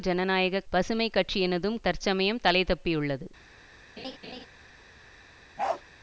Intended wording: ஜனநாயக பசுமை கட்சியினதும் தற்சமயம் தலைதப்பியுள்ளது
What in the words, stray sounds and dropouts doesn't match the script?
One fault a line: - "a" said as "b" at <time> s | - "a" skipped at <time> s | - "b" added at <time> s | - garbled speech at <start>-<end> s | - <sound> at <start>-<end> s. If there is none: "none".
- laugh at 4.0-4.5 s
- bark at 5.6-5.8 s